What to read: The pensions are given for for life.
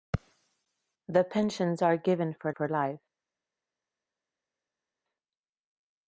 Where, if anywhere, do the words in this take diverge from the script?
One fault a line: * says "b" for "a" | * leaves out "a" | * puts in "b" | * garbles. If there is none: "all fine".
all fine